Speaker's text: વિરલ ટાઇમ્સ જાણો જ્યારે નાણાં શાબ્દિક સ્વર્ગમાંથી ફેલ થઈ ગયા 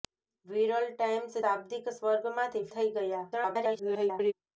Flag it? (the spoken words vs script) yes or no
yes